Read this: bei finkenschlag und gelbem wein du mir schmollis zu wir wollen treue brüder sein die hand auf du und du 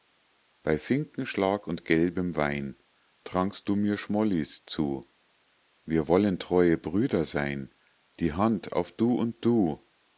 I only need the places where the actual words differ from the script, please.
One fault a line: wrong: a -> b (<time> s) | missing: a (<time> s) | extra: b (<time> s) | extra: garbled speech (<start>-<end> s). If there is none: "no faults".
extra: trankst (3.2 s)